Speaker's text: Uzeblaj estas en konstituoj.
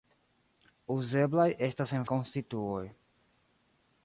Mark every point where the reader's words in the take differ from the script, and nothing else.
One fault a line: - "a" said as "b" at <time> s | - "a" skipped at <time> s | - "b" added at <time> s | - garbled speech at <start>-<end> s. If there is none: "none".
none